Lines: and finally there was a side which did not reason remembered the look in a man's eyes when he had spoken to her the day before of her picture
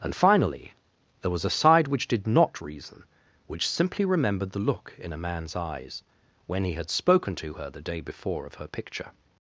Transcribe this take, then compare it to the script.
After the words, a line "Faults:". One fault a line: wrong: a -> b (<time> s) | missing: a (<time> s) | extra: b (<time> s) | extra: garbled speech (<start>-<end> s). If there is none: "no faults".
and finally there was a side which did not reason which simply remembered the look in a man's eyes when he had spoken to her the day before of her picture
Faults:
extra: which simply (3.5 s)